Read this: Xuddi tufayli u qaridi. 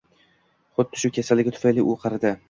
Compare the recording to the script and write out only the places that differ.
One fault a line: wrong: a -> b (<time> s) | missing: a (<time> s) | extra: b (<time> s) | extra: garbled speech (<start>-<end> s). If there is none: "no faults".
extra: shu kasalligi (1.0 s)